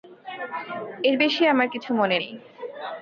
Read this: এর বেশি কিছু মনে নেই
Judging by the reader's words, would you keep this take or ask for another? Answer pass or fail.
fail